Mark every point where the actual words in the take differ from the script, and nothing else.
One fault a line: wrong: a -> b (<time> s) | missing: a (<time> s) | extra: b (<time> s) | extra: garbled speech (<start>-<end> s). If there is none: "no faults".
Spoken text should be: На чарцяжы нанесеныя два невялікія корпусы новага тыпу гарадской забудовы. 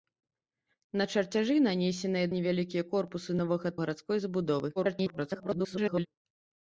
missing: два (2.3 s)
missing: тыпу (3.7 s)
extra: garbled speech (4.8-6.1 s)